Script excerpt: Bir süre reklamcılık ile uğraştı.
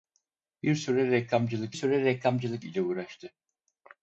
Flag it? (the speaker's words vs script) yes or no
yes